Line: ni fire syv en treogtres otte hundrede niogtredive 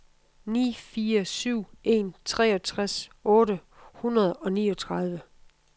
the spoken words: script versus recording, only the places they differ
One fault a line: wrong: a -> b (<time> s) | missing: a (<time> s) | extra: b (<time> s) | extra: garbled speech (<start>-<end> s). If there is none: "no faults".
extra: og (4.3 s)